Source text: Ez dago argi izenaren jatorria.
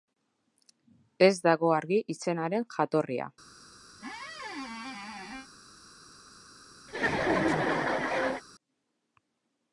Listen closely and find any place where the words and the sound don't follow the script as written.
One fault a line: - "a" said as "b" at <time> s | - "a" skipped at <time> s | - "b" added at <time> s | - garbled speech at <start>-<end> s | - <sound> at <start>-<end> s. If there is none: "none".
- squeak at 3.9-5.5 s
- laugh at 6.9-8.4 s